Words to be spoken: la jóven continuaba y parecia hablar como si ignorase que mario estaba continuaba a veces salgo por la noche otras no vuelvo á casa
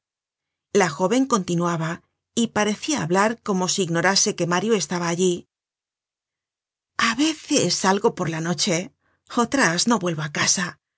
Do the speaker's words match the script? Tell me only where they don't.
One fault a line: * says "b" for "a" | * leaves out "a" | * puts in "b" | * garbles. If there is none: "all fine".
* says "allí" for "continuaba"